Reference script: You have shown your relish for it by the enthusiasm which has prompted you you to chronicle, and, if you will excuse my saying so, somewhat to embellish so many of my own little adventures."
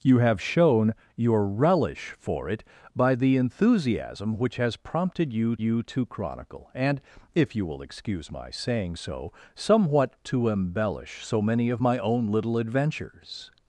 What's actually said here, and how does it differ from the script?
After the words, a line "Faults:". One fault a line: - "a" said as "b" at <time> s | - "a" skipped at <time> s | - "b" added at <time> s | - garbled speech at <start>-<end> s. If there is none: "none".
You have shown your relish for it by the enthusiasm which has prompted you you to chronicle, and, if you will excuse my saying so, somewhat to embellish so many of my own little adventures."
Faults:
none